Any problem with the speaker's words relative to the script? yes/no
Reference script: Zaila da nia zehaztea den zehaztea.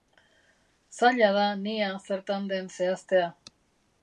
yes